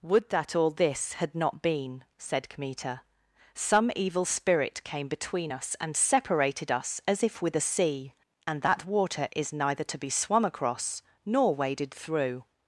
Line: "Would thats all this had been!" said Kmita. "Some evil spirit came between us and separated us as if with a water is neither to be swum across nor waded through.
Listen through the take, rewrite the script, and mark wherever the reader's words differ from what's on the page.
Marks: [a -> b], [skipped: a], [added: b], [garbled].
"Would [thats -> that] all this had [added: not] been!" said Kmita. "Some evil spirit came between us and separated us as if with a [added: sea and that] water is neither to be swum across nor waded through.